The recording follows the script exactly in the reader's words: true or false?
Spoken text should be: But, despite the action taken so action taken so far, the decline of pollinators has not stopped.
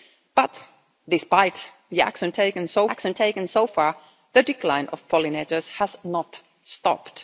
true